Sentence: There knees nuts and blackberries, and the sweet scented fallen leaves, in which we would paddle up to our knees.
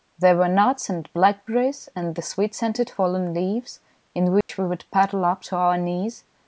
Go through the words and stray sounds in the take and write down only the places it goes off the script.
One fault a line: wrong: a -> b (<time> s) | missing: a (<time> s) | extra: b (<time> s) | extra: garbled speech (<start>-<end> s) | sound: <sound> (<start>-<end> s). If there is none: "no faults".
wrong: knees -> were (0.3 s)
sound: dropout (4.4-4.5 s)